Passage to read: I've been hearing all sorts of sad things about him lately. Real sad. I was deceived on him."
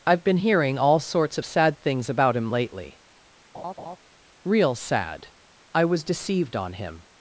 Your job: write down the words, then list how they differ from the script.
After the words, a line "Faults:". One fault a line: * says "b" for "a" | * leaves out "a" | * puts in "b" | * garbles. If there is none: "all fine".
I've been hearing all sorts of sad things about him lately. Real sad. I was deceived on him."
Faults:
all fine